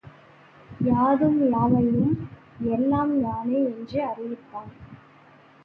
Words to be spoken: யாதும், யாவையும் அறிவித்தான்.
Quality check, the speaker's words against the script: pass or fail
fail